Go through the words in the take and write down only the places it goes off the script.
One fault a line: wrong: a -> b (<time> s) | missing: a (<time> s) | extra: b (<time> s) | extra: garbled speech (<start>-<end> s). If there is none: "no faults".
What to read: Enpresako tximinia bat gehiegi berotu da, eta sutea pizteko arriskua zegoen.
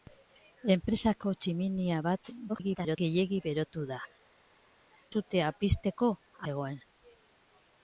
extra: garbled speech (2.5-3.0 s)
missing: eta (4.0 s)
missing: arriskua (6.1 s)